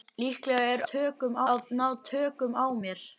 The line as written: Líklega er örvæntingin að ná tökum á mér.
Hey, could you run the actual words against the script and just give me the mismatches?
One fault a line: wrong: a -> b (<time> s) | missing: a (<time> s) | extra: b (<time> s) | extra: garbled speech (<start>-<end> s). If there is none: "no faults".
wrong: örvæntingin -> tökum (0.9 s)